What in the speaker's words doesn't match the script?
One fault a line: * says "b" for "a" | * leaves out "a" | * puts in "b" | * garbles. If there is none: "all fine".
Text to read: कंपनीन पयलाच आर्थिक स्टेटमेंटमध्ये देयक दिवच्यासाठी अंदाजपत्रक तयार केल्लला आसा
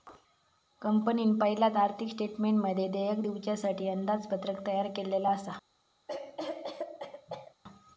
all fine